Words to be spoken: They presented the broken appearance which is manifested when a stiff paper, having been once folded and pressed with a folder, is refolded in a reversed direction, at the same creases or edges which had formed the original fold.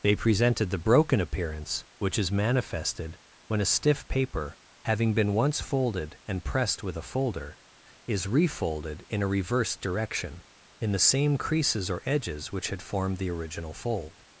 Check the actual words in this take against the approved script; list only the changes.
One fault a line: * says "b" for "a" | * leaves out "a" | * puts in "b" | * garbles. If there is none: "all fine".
* says "in" for "at"